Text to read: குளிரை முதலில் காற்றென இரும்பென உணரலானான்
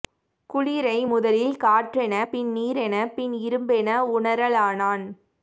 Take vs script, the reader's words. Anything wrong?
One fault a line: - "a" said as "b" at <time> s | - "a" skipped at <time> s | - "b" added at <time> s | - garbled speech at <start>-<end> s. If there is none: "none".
- "பின் நீரென பின்" added at 2.3 s